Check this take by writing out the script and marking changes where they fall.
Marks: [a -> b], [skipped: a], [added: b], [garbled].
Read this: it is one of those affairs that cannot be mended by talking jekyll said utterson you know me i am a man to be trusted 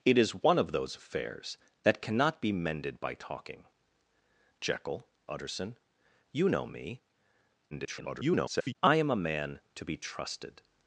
it is one of those affairs that cannot be mended by talking jekyll [skipped: said] utterson you know me [garbled] i am a man to be trusted